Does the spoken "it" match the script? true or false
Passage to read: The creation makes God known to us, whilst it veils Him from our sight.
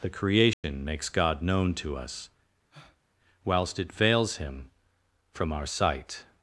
true